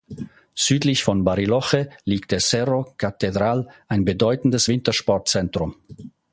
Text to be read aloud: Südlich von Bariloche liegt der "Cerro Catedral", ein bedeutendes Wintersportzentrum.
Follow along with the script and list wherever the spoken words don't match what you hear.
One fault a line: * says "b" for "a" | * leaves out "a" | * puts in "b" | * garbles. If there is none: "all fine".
all fine